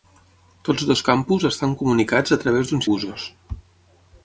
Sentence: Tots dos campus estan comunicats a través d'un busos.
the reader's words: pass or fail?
pass